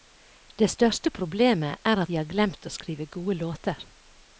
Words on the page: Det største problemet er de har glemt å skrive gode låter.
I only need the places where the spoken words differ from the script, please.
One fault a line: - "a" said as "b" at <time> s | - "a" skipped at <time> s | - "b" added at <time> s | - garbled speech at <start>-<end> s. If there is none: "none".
none